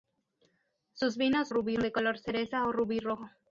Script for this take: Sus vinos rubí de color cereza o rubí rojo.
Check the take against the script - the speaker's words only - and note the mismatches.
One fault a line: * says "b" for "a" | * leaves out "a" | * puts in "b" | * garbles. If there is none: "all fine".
all fine